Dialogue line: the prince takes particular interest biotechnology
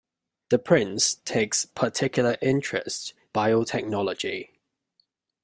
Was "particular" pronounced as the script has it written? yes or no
yes